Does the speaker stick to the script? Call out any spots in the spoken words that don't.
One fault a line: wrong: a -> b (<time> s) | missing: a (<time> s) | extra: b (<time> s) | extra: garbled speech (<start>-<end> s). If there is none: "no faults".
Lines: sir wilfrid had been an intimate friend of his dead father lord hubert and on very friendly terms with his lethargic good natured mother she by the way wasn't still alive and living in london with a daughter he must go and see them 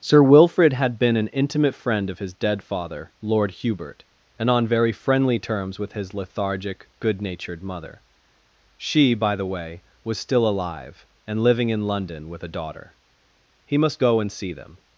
wrong: wasn't -> was (10.0 s)